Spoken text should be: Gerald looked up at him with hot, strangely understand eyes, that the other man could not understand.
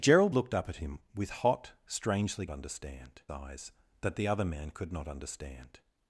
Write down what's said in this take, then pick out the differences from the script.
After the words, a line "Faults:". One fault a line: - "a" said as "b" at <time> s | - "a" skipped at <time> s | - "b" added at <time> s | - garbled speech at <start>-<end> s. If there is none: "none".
Gerald looked up at him with hot, strangely understand eyes, that the other man could not understand.
Faults:
none